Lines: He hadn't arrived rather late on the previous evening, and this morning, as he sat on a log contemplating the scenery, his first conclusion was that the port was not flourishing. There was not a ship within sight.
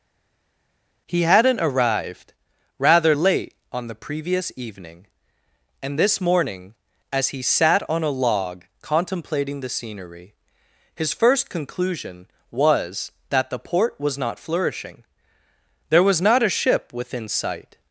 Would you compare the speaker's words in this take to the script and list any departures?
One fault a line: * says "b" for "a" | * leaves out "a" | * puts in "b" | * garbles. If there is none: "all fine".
all fine